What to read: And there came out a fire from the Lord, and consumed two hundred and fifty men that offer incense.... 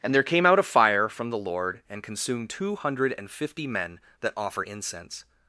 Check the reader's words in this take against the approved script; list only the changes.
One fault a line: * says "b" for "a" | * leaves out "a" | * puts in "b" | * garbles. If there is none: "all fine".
all fine